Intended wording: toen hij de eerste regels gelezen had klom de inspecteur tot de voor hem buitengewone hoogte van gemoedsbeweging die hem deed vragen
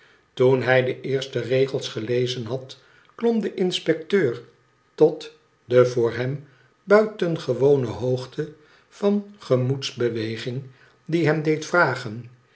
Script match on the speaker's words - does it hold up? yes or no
yes